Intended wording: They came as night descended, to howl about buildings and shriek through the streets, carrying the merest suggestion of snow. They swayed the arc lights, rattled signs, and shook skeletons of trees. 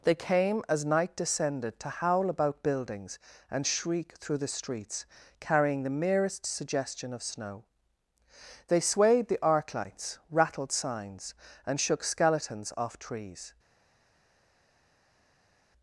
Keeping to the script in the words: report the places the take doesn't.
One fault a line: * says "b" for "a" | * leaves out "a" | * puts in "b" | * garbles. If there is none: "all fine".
* says "off" for "of"